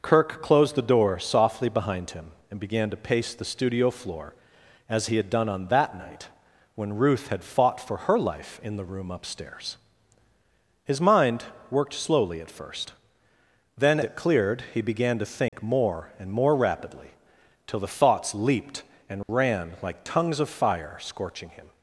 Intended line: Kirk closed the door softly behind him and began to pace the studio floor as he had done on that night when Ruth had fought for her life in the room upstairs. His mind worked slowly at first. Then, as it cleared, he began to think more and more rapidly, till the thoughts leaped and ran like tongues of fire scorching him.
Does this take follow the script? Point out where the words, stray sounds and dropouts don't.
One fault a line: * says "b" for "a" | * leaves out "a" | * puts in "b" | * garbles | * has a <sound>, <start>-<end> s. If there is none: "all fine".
* leaves out "as"
* has a dropout, 15.5-15.5 s
* has a dropout, 19.2-19.3 s